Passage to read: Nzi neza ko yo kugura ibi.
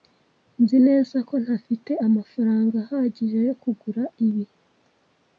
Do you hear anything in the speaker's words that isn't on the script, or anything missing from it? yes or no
yes